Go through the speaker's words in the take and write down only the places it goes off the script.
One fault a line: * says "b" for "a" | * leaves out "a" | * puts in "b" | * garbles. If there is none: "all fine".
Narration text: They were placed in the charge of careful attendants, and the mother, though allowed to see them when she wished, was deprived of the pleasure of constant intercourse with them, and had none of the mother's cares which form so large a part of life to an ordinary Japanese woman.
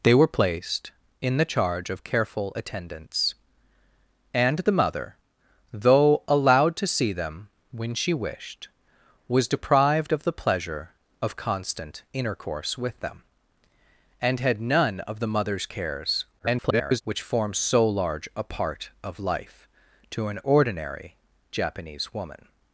* garbles